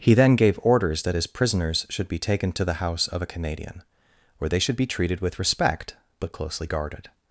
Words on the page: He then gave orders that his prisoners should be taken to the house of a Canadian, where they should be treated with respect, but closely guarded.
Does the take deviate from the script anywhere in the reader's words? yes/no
no